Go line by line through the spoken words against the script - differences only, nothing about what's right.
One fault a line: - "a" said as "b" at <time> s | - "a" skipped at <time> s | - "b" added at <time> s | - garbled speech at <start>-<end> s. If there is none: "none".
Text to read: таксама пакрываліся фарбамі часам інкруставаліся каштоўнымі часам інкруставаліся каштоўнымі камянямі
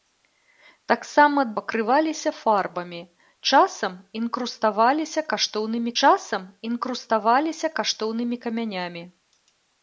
none